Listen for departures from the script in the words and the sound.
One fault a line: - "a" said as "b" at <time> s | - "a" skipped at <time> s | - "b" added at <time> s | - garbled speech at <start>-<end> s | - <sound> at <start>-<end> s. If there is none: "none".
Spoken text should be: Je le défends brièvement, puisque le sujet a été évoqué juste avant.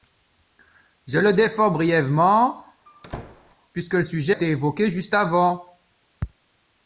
- squeak at 2.9-3.6 s
- "a" skipped at 4.3 s